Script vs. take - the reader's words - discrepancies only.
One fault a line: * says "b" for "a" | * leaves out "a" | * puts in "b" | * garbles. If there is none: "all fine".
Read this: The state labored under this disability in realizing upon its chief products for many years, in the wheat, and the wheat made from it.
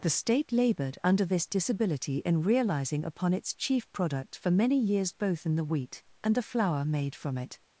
* says "product" for "products"
* puts in "both"
* says "flour" for "wheat"